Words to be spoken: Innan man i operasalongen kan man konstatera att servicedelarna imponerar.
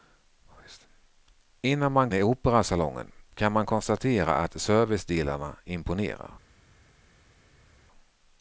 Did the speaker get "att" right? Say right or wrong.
right